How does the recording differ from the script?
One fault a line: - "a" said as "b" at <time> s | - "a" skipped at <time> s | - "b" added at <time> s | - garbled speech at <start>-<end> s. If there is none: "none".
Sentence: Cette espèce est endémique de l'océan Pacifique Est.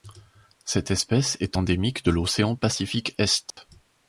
none